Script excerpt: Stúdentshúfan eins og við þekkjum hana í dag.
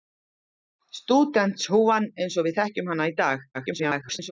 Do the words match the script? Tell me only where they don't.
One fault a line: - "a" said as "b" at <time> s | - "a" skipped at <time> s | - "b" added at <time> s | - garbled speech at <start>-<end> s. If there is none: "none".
- garbled speech at 3.5-4.3 s